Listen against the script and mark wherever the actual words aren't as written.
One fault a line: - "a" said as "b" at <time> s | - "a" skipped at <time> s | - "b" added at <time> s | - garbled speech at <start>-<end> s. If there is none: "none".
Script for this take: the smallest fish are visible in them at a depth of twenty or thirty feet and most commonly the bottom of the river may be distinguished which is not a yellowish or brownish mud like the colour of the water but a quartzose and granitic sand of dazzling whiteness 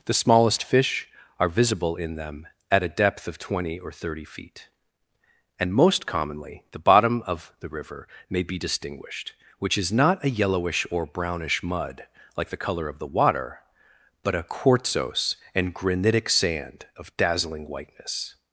none